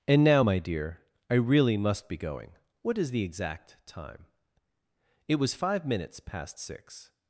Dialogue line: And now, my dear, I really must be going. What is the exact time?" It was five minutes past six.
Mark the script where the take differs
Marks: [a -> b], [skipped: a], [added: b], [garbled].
And now, my dear, I really must be going. What is the exact time?" It was five minutes past six.